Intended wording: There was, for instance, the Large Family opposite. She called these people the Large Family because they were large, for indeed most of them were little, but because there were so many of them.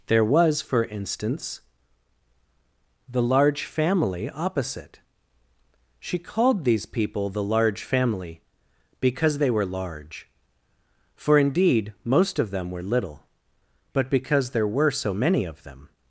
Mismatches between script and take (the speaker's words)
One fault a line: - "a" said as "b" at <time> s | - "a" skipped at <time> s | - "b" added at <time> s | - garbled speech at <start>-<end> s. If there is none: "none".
none